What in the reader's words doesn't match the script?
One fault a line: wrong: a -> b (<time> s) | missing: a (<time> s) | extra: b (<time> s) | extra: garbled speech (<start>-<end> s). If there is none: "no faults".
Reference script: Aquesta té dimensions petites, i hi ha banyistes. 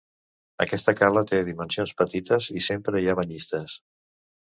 extra: cala (1.0 s)
extra: sempre (2.7 s)